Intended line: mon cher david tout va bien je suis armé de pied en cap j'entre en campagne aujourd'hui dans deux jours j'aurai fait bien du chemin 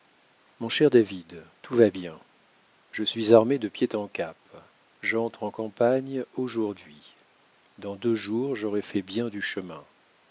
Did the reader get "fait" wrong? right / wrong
right